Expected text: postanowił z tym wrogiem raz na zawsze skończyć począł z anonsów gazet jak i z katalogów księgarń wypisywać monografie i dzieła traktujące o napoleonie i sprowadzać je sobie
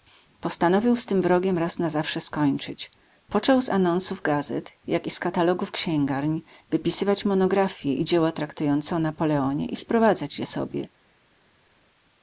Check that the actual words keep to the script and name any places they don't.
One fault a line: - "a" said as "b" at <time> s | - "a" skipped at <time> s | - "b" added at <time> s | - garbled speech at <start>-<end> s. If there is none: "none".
none